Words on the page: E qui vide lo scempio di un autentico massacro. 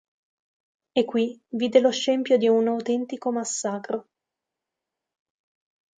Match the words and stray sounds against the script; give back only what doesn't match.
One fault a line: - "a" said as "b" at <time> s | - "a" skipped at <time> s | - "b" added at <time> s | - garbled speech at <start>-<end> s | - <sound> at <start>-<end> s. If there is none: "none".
none